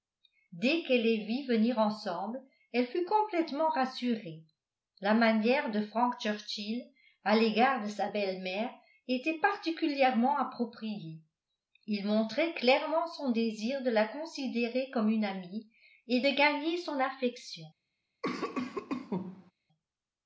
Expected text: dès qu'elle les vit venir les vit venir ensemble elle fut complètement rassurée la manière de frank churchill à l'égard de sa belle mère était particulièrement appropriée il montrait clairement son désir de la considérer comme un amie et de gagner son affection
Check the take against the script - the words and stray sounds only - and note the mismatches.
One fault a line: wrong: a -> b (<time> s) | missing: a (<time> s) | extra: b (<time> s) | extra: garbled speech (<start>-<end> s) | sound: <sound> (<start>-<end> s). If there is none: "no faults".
missing: les vit venir (1.8 s)
wrong: un -> une (15.1 s)
sound: cough (18.2-19.5 s)